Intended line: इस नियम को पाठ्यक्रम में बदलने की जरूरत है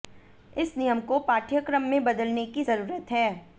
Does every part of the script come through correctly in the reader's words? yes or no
yes